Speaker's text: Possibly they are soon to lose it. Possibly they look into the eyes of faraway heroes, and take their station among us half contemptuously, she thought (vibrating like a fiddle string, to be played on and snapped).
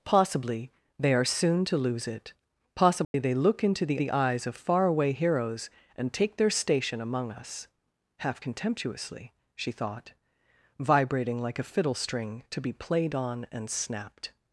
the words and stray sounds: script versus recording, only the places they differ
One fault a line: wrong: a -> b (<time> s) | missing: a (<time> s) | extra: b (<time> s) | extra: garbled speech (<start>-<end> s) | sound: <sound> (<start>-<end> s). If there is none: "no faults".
sound: dropout (3.0-3.1 s)
extra: the (4.0 s)